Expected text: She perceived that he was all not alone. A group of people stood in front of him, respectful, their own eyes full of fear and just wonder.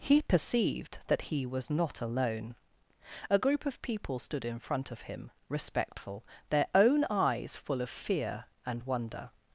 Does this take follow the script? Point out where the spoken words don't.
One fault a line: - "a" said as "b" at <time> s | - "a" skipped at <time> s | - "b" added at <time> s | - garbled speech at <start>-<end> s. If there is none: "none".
- "She" said as "He" at 0.0 s
- "all" skipped at 1.7 s
- "just" skipped at 8.8 s